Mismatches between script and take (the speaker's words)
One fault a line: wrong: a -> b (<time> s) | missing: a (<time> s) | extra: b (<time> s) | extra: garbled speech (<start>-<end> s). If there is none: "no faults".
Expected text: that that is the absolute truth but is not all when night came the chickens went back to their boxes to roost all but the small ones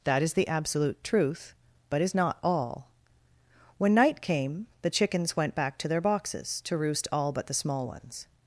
missing: that (0.2 s)